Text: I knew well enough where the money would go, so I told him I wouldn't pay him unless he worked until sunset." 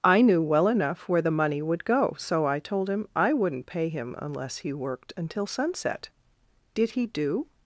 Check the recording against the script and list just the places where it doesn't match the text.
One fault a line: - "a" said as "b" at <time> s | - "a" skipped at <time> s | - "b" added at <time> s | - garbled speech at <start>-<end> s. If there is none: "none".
- "Did he do" added at 6.7 s